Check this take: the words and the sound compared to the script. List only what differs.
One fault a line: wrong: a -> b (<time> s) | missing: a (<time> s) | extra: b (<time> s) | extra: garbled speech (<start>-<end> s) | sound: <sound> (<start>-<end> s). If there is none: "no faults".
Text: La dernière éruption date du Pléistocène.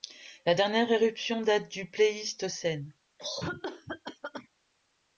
sound: cough (3.2-4.5 s)